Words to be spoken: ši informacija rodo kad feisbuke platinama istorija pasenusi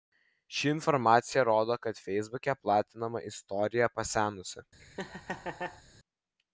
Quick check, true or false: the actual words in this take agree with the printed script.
true